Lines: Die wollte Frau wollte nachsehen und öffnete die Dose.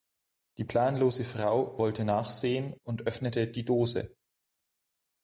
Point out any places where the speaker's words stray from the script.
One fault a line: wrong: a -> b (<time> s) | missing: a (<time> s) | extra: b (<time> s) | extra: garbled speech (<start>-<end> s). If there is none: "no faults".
wrong: wollte -> planlose (0.6 s)